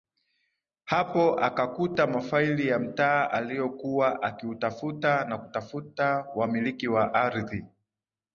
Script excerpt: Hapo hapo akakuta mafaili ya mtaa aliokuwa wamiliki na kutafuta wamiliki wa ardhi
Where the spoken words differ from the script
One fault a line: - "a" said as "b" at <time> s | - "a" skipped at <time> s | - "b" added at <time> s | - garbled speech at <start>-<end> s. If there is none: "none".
- "hapo" skipped at 1.4 s
- "wamiliki" said as "akiutafuta" at 4.2 s